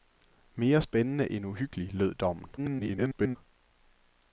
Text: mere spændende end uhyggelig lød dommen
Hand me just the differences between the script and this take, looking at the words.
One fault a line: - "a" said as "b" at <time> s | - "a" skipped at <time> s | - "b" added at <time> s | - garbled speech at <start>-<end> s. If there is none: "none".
- garbled speech at 2.6-3.4 s